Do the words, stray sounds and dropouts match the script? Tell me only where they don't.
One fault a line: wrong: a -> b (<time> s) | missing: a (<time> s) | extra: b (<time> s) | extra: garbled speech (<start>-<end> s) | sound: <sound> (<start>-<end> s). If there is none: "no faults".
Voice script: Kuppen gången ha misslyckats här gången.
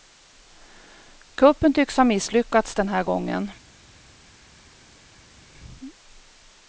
wrong: gången -> tycks (1.7 s)
extra: den (2.7 s)